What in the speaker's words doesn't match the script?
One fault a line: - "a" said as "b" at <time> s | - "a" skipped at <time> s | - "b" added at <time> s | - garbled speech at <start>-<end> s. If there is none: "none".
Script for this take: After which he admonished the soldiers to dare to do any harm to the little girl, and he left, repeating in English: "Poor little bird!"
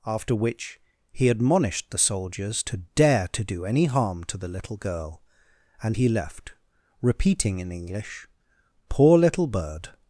none